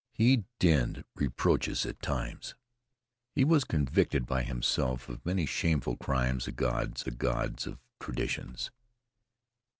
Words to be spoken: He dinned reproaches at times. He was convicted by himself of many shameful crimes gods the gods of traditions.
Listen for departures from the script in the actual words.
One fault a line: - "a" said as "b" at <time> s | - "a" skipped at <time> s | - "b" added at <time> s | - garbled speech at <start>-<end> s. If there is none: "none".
none